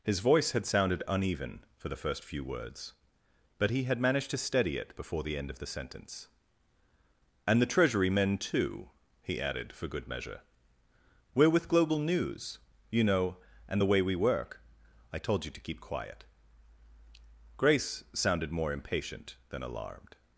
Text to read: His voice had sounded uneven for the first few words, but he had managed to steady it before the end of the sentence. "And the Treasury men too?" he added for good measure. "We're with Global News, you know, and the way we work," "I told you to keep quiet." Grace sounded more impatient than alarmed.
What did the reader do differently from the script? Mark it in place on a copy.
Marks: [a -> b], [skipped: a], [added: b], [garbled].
His voice had sounded uneven for the first few words, but he had managed to steady it before the end of the sentence. "And the Treasury men too?" he added for good measure. "We're with Global News, you know, and the way we work," "I told you to keep quiet." Grace sounded more impatient than alarmed.